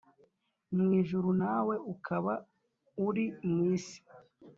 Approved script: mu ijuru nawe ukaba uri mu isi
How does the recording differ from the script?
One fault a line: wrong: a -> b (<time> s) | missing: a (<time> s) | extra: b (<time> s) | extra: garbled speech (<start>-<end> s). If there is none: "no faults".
no faults